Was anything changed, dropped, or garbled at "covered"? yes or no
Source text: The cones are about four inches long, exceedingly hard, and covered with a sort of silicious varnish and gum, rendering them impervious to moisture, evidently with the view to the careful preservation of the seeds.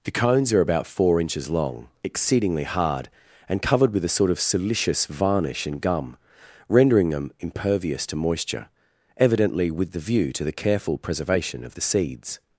no